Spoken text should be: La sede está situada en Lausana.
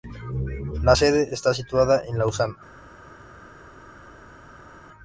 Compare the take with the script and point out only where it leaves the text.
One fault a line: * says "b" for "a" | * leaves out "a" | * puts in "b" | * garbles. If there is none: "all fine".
all fine